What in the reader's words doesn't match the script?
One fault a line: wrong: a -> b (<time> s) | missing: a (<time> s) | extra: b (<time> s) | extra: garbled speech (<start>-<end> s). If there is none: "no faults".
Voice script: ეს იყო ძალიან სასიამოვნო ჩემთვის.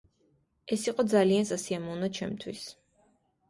no faults